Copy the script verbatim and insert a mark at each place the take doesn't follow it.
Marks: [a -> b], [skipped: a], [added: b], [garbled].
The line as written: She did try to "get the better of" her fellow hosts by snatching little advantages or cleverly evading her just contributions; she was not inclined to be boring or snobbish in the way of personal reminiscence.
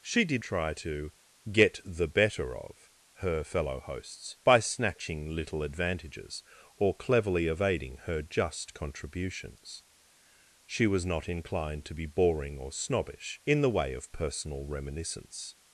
She did try to "get the better of" her fellow hosts by snatching little advantages or cleverly evading her just contributions; she was not inclined to be boring or snobbish in the way of personal reminiscence.